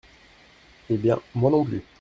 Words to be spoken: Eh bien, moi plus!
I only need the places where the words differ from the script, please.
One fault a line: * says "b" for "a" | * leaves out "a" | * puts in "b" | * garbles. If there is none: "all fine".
* puts in "non"